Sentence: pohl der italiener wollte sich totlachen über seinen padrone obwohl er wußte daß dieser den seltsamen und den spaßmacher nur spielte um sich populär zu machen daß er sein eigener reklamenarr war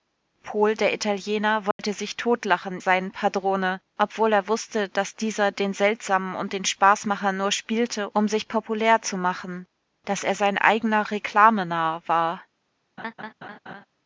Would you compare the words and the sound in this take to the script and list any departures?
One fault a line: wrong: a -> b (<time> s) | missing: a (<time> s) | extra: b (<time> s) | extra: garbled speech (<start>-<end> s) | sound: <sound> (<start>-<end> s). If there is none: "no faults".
sound: dropout (1.7-1.8 s)
missing: über (2.8 s)
sound: laugh (13.0-13.9 s)